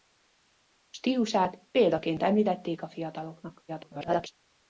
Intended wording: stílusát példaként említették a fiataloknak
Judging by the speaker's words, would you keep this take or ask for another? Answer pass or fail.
fail